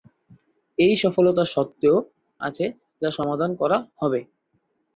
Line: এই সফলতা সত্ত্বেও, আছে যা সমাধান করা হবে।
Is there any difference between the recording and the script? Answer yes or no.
no